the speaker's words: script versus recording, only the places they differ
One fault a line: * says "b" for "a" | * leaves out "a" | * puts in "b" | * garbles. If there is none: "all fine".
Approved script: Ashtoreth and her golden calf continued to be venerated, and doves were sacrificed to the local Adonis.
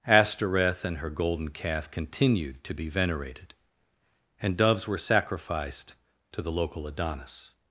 all fine